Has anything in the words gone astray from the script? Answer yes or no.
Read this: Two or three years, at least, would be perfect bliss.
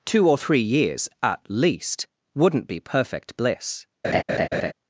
yes